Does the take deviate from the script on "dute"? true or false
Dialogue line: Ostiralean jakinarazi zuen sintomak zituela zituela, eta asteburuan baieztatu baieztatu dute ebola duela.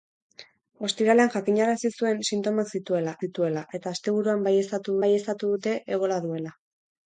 false